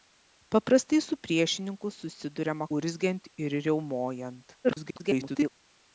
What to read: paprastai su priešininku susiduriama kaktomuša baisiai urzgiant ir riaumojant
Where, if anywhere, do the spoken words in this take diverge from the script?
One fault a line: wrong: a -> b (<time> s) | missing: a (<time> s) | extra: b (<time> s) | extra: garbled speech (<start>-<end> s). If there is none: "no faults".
missing: kaktomuša baisiai (2.7 s)
extra: garbled speech (4.6-5.5 s)